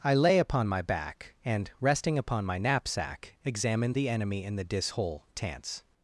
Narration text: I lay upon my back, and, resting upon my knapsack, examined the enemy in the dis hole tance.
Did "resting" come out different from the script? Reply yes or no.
no